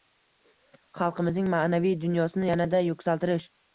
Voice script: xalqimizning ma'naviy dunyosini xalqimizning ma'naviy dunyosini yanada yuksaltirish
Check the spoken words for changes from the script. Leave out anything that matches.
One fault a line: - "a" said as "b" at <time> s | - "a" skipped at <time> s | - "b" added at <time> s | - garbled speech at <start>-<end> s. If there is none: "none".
- "xalqimizning ma'naviy dunyosini" skipped at 2.5 s